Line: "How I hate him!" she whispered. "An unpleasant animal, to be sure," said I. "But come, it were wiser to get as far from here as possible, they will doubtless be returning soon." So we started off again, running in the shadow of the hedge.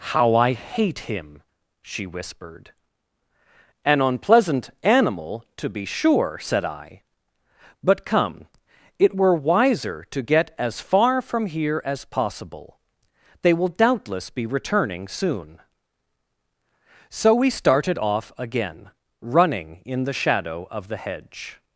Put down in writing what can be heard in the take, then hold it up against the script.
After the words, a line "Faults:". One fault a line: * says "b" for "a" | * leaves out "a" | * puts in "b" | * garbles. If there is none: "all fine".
"How I hate him!" she whispered. "An unpleasant animal, to be sure," said I. "But come, it were wiser to get as far from here as possible, they will doubtless be returning soon." So we started off again, running in the shadow of the hedge.
Faults:
all fine